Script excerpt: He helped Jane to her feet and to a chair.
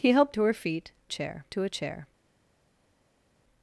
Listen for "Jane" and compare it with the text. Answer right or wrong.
wrong